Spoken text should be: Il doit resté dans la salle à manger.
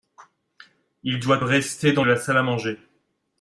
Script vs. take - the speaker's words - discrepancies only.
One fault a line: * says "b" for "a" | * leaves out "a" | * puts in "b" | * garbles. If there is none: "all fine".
all fine